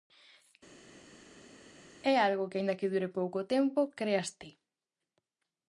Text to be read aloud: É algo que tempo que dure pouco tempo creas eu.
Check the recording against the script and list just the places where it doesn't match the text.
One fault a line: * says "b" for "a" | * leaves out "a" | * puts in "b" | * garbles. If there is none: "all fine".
* says "aínda" for "tempo"
* says "ti" for "eu"